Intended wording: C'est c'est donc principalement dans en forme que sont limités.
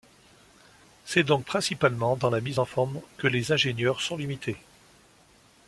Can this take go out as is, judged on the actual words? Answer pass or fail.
fail